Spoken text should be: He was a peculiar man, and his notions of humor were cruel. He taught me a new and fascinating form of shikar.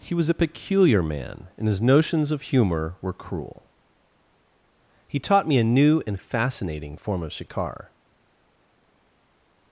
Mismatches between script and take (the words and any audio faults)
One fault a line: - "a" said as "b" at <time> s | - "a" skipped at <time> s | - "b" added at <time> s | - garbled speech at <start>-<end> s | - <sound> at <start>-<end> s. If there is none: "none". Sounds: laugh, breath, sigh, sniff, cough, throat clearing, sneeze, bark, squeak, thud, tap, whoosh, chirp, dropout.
none